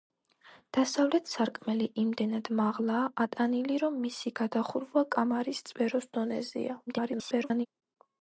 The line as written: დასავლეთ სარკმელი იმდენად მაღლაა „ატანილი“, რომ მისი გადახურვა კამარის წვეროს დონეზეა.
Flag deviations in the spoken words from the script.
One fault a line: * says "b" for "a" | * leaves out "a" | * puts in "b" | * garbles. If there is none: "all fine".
* garbles